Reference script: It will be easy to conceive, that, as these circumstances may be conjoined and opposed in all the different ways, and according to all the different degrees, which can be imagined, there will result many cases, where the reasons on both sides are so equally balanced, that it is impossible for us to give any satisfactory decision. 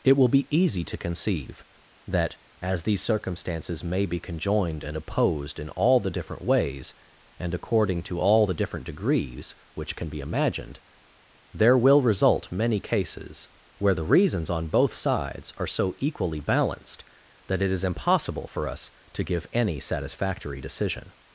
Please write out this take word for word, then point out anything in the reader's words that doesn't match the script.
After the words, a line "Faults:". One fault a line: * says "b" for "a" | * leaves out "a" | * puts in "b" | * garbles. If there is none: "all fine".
It will be easy to conceive, that, as these circumstances may be conjoined and opposed in all the different ways, and according to all the different degrees, which can be imagined, there will result many cases, where the reasons on both sides are so equally balanced, that it is impossible for us to give any satisfactory decision.
Faults:
all fine